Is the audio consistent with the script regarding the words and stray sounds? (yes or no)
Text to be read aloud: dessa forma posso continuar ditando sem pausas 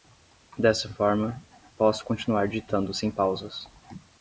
yes